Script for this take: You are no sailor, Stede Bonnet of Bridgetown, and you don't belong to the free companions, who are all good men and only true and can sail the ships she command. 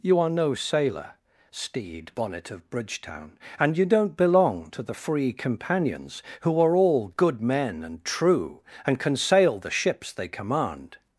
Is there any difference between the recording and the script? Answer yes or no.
yes